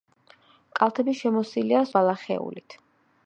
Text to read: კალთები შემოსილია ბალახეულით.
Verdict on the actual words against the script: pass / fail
pass